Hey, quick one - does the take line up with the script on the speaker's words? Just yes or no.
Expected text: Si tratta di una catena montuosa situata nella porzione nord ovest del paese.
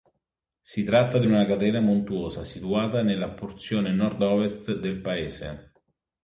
yes